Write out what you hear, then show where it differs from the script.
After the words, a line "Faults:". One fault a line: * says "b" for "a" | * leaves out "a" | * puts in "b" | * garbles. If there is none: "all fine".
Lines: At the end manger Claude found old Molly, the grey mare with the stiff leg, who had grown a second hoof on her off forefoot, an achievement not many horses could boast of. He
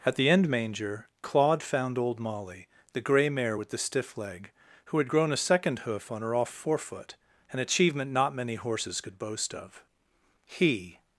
At the end manger Claude found old Molly, the grey mare with the stiff leg, who had grown a second hoof on her off forefoot, an achievement not many horses could boast of. He
Faults:
all fine